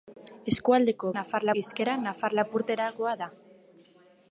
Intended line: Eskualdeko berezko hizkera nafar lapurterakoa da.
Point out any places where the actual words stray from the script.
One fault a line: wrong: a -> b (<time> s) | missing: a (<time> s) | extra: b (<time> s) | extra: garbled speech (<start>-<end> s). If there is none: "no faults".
wrong: berezko -> nafar (1.2 s)